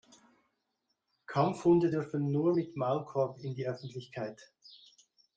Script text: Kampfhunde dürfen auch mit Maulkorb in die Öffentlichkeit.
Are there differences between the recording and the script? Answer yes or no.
yes